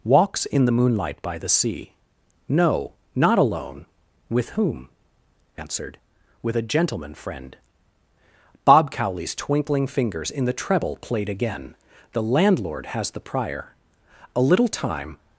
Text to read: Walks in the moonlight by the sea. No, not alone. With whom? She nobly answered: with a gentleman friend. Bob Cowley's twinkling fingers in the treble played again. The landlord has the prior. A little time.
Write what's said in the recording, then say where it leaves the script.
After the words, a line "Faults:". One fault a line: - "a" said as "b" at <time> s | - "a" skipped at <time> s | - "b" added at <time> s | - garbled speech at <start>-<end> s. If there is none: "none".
Walks in the moonlight by the sea. No, not alone. With whom? Answered: with a gentleman friend. Bob Cowley's twinkling fingers in the treble played again. The landlord has the prior. A little time.
Faults:
- "She nobly" skipped at 4.9 s